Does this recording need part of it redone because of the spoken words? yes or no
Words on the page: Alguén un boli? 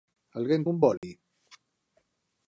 no